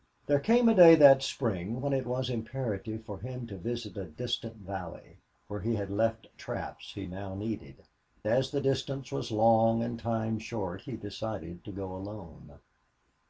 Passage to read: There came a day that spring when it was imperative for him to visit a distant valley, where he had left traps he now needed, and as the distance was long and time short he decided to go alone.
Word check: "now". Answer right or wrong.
right